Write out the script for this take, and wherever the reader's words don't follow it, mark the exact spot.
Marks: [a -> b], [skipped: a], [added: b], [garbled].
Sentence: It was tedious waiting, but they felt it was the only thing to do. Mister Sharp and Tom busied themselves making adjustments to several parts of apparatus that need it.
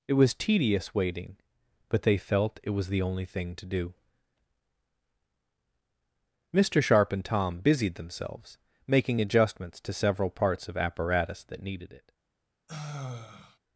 It was tedious waiting, but they felt it was the only thing to do. Mister Sharp and Tom busied themselves making adjustments to several parts of apparatus that [need -> needed] it.